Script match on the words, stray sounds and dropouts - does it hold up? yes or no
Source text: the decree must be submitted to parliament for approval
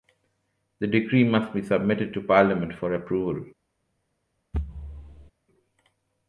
no